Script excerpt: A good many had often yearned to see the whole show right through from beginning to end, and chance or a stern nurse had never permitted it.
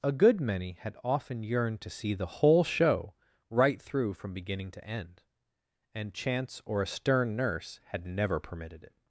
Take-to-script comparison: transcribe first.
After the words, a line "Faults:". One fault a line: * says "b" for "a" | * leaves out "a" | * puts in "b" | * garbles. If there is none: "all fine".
A good many had often yearned to see the whole show right through from beginning to end, and chance or a stern nurse had never permitted it.
Faults:
all fine